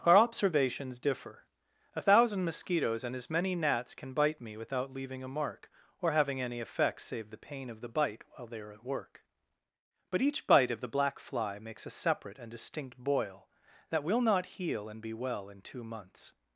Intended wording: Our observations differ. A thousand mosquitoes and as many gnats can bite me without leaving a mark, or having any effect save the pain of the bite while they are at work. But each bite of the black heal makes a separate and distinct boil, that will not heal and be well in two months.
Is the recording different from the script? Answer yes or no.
yes